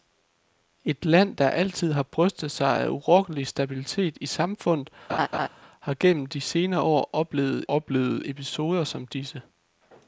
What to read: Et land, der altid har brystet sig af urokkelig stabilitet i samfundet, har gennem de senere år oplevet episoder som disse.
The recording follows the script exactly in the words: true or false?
false